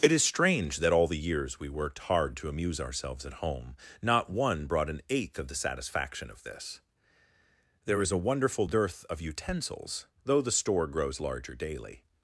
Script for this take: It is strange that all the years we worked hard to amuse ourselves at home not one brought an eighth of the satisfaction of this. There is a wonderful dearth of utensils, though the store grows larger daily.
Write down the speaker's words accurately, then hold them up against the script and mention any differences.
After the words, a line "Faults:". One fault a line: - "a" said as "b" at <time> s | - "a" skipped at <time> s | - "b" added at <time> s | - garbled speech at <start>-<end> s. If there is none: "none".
It is strange that all the years we worked hard to amuse ourselves at home not one brought an eighth of the satisfaction of this. There is a wonderful dearth of utensils, though the store grows larger daily.
Faults:
none